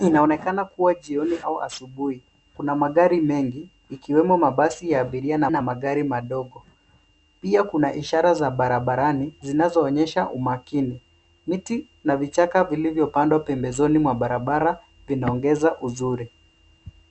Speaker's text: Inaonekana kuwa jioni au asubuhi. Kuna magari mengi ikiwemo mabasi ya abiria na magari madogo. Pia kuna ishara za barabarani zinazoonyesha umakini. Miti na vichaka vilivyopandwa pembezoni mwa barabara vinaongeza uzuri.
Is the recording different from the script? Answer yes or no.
yes